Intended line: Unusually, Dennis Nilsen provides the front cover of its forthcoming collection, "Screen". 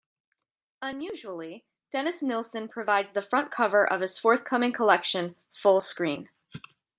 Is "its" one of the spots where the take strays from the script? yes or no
yes